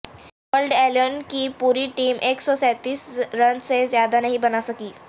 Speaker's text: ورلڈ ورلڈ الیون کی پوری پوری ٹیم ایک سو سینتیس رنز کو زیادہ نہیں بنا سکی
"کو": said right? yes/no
no